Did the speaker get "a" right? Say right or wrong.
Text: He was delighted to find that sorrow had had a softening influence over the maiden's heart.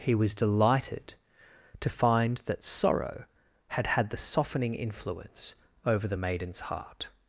wrong